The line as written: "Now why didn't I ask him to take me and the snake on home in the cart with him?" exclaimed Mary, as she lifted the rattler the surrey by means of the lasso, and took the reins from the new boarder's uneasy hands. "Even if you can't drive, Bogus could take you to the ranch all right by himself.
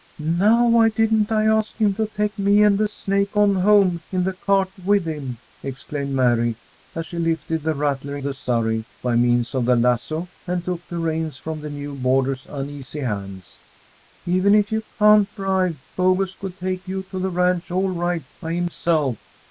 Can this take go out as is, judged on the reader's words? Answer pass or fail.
pass